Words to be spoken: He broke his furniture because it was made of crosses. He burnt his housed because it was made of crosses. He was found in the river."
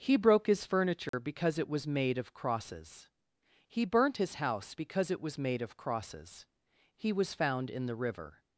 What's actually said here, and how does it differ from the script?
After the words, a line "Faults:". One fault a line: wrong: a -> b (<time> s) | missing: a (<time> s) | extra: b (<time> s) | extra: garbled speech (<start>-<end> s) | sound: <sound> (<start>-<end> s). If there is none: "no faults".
He broke his furniture because it was made of crosses. He burnt his house because it was made of crosses. He was found in the river."
Faults:
sound: dropout (1.1-1.1 s)
wrong: housed -> house (4.4 s)